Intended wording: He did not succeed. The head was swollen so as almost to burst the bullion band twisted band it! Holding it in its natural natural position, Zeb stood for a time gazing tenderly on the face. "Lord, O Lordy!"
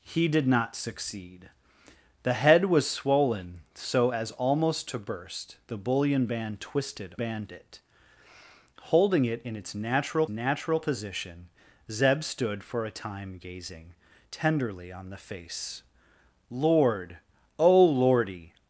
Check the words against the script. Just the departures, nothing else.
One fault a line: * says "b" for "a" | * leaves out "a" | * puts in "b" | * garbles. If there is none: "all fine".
all fine